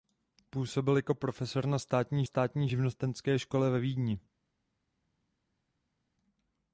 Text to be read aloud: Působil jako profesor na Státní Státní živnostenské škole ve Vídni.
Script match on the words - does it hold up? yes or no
yes